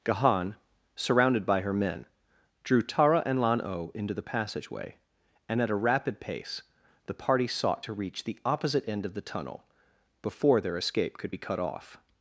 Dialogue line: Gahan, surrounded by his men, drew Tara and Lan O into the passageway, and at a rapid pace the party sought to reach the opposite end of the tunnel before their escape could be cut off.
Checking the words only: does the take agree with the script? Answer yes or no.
no